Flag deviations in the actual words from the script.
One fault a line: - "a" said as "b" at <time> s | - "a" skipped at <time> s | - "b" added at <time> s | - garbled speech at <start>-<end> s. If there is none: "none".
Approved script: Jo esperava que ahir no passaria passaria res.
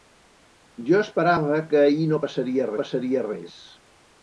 none